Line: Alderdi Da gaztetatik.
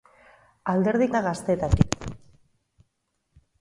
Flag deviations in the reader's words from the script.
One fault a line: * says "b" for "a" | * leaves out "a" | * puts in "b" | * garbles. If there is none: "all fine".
all fine